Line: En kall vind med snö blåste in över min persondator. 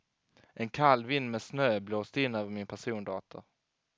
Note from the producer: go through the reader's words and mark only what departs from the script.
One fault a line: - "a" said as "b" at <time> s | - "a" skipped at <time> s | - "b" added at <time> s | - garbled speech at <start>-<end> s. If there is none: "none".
none